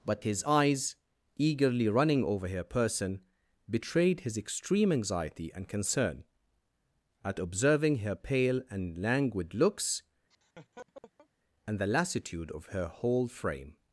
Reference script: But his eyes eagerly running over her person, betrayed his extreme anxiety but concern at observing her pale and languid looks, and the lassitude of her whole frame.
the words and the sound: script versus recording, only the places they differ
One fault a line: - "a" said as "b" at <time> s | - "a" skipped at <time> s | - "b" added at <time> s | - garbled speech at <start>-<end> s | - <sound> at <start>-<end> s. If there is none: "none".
- "but" said as "and" at 5.5 s
- laugh at 10.3-11.3 s